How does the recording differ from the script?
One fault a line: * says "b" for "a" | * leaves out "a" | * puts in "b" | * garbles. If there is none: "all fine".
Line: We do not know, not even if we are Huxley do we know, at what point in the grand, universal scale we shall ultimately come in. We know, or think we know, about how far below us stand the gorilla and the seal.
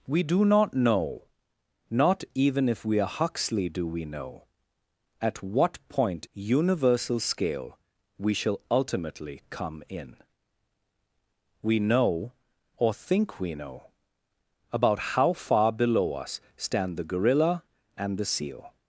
* leaves out "in the grand"